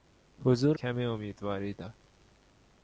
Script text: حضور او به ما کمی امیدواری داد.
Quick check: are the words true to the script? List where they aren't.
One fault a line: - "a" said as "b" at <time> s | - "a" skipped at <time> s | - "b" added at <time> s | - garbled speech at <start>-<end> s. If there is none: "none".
- "او به ما" skipped at 0.8 s